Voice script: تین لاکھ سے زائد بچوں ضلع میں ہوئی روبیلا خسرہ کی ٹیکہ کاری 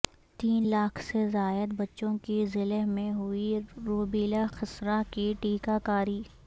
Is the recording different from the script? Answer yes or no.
yes